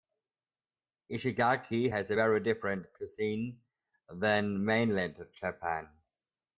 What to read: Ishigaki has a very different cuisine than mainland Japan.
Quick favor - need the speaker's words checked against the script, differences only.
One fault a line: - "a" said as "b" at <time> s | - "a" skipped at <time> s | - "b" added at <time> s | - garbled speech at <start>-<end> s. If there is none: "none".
none